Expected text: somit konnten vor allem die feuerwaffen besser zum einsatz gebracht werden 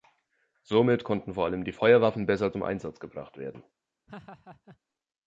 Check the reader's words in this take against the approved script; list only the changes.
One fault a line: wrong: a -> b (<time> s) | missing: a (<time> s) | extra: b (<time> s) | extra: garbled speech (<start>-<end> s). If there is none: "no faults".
no faults